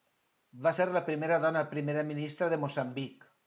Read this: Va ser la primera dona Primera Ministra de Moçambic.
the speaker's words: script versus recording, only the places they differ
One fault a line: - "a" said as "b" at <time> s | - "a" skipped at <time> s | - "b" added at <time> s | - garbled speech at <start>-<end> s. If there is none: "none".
none